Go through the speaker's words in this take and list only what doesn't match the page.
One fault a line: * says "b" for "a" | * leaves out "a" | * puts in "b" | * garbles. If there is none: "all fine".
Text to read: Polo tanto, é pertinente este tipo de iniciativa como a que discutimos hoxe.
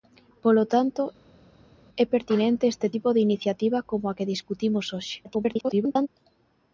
* garbles